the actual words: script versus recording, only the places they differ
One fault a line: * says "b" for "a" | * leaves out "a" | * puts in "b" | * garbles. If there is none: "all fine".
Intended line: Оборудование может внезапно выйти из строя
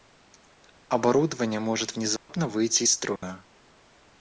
all fine